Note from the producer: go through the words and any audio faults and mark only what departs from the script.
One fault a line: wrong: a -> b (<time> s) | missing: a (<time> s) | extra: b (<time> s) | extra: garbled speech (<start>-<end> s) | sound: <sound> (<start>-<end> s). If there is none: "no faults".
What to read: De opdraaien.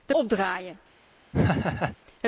sound: laugh (1.3-2.0 s)